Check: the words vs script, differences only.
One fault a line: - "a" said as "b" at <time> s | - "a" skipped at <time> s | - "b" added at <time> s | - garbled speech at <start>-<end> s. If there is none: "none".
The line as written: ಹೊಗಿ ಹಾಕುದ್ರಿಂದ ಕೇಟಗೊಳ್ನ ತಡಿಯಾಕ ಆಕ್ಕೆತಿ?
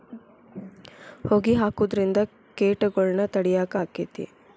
none